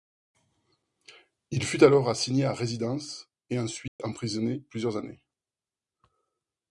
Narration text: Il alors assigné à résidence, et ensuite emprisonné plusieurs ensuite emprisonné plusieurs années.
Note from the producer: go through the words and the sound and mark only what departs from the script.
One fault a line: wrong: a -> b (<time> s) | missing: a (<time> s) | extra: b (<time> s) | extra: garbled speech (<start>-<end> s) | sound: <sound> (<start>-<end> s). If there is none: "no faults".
extra: fut (1.6 s)
sound: dropout (3.9-4.0 s)
missing: ensuite emprisonné plusieurs (5.0 s)